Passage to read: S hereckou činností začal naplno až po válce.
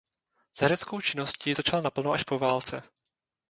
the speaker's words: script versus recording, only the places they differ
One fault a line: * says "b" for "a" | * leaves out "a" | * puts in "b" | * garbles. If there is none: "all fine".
all fine